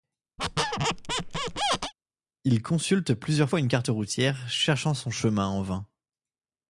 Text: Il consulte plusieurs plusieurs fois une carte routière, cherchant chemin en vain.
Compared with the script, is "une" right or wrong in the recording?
right